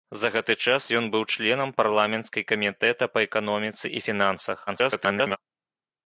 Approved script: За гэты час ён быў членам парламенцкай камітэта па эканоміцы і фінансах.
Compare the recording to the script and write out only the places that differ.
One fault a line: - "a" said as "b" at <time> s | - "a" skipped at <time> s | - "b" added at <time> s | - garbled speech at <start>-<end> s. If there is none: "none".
- garbled speech at 4.7-5.4 s